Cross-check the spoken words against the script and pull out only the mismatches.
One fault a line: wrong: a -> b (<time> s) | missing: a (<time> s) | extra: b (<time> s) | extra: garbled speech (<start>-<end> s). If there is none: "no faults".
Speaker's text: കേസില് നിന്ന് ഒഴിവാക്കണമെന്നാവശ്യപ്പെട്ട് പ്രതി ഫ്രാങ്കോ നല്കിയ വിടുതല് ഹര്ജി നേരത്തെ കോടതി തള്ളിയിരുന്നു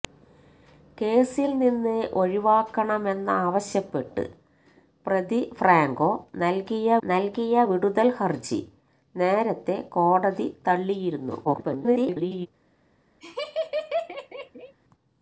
extra: നല്കിയ (7.0 s)
extra: garbled speech (11.4-12.5 s)